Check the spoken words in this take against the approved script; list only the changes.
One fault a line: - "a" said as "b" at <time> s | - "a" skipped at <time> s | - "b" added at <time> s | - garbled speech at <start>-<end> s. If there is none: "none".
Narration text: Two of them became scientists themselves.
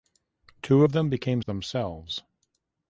- "scientists" skipped at 1.4 s